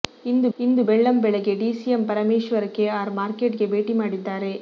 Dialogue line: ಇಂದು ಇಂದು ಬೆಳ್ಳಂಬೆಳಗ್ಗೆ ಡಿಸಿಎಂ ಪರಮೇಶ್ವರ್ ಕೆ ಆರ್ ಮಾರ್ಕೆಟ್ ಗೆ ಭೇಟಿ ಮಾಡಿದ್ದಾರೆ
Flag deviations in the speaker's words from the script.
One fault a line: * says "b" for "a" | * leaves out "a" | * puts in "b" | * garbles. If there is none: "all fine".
all fine